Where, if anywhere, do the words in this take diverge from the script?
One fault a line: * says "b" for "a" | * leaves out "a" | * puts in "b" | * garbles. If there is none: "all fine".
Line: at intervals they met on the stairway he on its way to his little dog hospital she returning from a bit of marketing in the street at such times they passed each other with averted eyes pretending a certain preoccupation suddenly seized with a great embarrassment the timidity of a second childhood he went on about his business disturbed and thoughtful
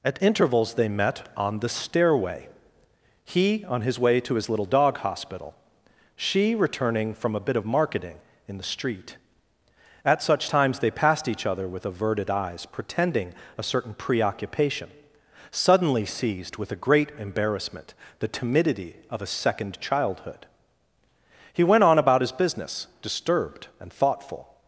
* says "his" for "its"